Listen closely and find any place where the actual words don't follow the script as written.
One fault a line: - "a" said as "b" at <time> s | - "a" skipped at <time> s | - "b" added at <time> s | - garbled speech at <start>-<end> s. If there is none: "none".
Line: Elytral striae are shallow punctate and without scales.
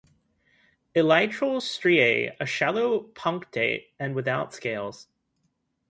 none